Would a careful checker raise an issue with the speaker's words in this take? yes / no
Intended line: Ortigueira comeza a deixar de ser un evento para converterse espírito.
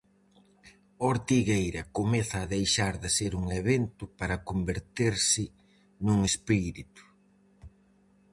yes